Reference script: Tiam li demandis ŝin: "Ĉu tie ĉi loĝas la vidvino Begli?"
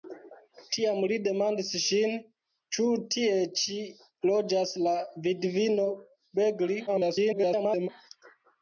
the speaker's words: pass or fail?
fail